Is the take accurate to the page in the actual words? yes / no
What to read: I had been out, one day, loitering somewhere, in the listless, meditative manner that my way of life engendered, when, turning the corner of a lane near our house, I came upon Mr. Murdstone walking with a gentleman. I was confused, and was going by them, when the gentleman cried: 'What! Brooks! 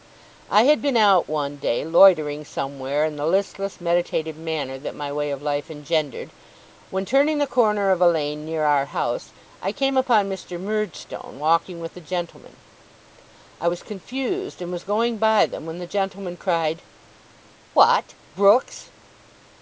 yes